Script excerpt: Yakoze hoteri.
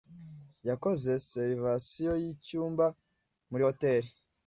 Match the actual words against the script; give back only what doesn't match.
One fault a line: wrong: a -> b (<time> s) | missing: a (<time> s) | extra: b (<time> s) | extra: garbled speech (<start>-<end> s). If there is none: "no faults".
extra: reservation yicyumba muri (1.1 s)